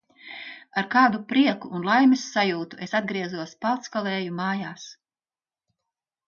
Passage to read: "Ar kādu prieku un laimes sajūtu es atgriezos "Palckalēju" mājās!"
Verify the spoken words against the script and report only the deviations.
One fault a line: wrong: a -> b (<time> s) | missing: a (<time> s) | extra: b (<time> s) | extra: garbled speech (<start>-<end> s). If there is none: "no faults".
no faults